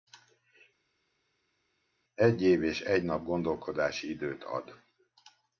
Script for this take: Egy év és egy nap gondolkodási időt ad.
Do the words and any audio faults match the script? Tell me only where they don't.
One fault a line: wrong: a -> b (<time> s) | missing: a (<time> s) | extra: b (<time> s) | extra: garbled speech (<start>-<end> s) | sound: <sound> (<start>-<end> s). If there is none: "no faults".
no faults